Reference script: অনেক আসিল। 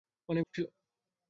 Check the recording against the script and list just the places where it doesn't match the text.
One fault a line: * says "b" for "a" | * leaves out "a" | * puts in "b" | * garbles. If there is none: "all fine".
all fine